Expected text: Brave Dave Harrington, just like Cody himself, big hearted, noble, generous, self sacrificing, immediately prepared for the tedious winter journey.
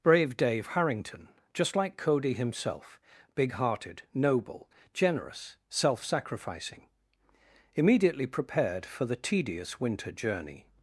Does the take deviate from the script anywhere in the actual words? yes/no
no